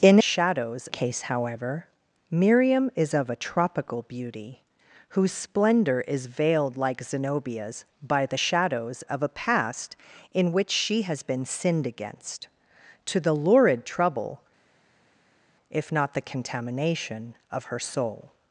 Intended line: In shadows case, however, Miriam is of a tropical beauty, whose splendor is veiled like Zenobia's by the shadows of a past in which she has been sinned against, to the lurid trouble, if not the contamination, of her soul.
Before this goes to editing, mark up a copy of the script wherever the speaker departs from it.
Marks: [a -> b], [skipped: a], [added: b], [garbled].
In shadows case, however, Miriam is of a tropical beauty, whose splendor is veiled like Zenobia's by the shadows of a past in which she has been sinned against, to the lurid trouble, if not the contamination, of her soul.